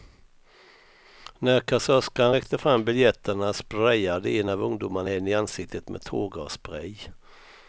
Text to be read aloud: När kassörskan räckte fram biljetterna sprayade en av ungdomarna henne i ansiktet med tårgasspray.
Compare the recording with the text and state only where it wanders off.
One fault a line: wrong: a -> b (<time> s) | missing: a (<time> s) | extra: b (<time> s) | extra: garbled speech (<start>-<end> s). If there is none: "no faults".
no faults